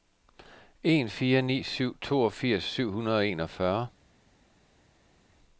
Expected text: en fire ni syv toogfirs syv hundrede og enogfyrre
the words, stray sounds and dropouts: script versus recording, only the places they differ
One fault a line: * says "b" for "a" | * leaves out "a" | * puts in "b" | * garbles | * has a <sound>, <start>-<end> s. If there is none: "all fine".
all fine